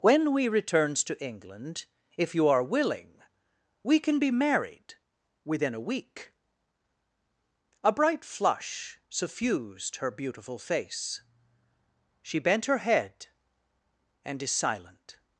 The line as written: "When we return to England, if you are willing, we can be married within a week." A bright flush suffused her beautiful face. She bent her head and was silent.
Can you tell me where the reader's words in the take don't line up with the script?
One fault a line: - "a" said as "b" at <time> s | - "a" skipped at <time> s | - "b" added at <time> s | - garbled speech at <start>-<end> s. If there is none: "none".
- "return" said as "returns" at 0.5 s
- "was" said as "is" at 14.4 s